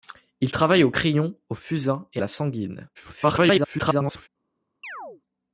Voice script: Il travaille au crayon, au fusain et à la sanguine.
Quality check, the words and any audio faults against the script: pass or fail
fail